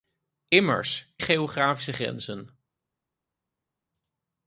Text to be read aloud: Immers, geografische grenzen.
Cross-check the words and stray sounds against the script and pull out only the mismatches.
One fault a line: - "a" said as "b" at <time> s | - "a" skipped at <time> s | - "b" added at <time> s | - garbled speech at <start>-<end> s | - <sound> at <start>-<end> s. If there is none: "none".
none